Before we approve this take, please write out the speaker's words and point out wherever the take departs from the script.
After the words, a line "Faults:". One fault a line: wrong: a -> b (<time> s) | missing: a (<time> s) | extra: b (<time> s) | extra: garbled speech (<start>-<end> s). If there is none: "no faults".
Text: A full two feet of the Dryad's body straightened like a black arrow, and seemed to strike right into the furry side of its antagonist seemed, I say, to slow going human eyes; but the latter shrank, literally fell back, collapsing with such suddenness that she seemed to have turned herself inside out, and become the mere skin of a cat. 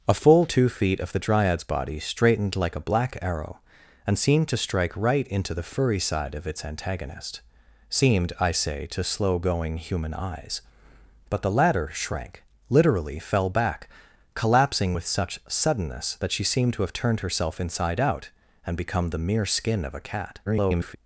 A full two feet of the Dryad's body straightened like a black arrow, and seemed to strike right into the furry side of its antagonist seemed, I say, to slow going human eyes; but the latter shrank, literally fell back, collapsing with such suddenness that she seemed to have turned herself inside out, and become the mere skin of a cat. [garbled]
Faults:
extra: garbled speech (20.5-21.0 s)